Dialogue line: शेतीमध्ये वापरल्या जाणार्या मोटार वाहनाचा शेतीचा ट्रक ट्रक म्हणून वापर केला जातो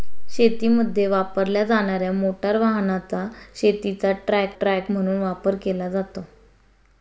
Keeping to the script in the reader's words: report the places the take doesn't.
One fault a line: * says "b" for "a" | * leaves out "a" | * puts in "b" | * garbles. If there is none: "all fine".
all fine